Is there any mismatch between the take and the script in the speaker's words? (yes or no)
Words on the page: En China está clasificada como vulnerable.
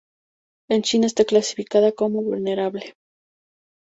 no